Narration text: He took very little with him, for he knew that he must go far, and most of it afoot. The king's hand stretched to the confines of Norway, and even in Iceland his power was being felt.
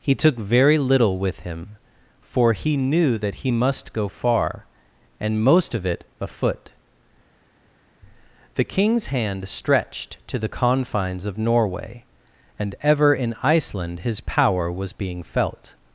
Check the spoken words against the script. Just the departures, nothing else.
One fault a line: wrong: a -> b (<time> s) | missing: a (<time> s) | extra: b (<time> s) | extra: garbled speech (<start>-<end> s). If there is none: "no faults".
wrong: even -> ever (12.8 s)